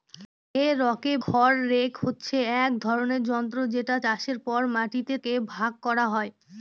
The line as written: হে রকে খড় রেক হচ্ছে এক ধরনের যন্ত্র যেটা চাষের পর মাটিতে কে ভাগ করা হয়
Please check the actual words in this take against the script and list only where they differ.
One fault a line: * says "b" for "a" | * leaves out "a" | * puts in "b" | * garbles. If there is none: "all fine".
all fine